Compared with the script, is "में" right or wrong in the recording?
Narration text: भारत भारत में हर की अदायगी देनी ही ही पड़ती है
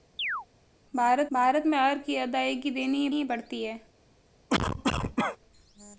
right